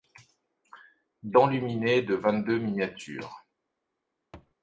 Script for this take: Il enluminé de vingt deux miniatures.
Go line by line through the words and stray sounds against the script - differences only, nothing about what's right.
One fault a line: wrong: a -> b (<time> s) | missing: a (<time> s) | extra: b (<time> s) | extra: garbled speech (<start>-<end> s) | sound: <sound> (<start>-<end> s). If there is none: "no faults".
sound: thud (4.3-4.5 s)